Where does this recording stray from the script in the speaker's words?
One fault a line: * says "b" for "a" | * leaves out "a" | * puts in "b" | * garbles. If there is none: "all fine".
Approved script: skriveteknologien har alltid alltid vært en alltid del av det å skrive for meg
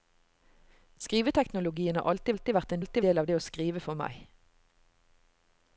all fine